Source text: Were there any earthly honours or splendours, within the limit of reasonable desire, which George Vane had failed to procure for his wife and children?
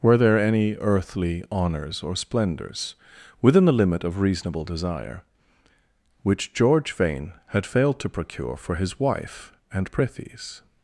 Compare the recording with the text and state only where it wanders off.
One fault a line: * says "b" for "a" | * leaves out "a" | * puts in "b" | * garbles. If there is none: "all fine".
* says "prithees" for "children"